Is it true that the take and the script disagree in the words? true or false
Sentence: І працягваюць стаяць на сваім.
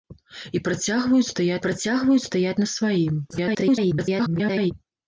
true